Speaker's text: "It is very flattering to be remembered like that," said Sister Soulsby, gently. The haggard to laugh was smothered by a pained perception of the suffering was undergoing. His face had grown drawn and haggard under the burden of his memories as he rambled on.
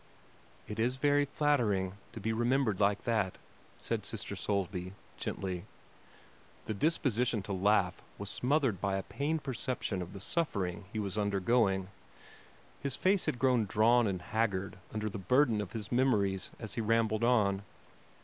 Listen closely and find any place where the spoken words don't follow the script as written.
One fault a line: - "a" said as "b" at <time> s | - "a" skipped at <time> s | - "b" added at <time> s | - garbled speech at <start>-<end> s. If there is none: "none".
- "haggard" said as "disposition" at 6.7 s
- "he" added at 10.8 s